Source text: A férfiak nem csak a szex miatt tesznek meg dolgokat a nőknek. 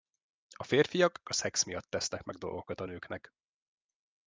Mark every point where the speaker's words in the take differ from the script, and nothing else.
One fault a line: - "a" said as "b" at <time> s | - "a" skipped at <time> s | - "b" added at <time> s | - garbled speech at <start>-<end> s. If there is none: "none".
- "nem csak" skipped at 1.2 s